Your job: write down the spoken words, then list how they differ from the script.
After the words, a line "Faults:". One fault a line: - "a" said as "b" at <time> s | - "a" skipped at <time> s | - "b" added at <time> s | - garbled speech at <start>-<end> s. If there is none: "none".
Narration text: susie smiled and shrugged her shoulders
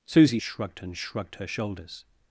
susie shrugged and shrugged her shoulders
Faults:
- "smiled" said as "shrugged" at 0.4 s